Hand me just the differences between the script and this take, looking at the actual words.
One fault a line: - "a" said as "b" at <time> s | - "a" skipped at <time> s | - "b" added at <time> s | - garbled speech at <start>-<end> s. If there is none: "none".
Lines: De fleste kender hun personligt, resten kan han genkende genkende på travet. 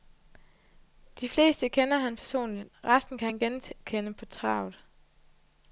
- "hun" said as "han" at 2.0 s
- "genkende" skipped at 4.1 s